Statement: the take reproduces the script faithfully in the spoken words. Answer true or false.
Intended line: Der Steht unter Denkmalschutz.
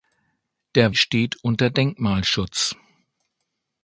true